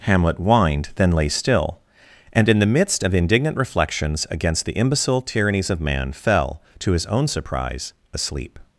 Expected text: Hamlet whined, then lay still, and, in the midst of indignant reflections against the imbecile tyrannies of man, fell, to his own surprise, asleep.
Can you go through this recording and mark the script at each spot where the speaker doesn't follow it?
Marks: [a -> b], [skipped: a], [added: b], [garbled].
Hamlet whined, then lay still, and, in the midst of indignant reflections against the imbecile tyrannies of man, fell, to his own surprise, asleep.